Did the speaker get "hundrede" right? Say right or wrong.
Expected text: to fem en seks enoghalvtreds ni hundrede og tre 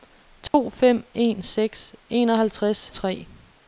wrong